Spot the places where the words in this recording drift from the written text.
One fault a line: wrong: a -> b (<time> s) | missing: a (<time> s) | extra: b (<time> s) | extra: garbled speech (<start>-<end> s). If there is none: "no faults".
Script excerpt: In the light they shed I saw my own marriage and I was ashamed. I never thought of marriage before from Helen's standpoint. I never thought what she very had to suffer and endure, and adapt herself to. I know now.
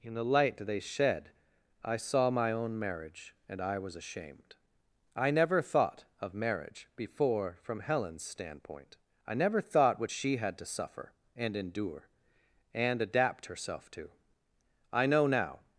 missing: very (10.4 s)